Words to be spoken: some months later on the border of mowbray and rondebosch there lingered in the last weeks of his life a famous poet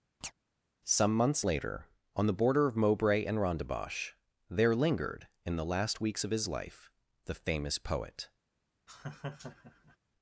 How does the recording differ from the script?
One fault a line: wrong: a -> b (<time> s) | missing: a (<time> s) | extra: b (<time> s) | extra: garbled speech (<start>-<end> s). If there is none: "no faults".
wrong: a -> the (7.3 s)